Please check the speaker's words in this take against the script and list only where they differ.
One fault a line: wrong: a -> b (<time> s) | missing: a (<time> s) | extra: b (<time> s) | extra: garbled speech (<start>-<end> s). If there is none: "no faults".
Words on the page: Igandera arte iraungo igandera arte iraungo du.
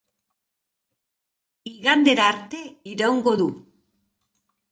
missing: igandera arte iraungo (3.3 s)